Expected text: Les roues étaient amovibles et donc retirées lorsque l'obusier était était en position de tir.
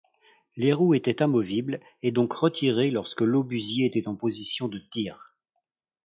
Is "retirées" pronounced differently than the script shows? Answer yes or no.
no